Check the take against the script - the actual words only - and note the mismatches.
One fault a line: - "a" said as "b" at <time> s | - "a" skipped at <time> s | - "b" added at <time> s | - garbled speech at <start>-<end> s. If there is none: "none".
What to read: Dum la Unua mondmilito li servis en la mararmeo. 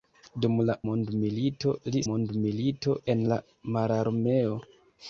- "Unua" skipped at 0.8 s
- "servis" said as "mondmilito" at 2.1 s